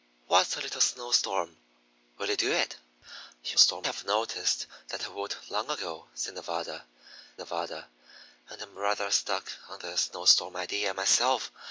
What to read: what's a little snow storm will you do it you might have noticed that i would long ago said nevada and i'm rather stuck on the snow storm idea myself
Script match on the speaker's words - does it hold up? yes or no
no